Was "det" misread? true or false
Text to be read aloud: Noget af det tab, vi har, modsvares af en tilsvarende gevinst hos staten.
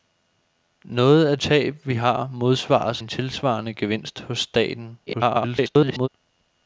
true